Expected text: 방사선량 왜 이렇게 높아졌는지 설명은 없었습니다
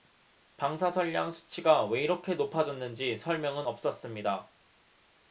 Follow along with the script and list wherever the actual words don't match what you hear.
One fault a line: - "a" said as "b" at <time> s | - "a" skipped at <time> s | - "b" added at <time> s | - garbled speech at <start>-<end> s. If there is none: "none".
- "수치가" added at 1.3 s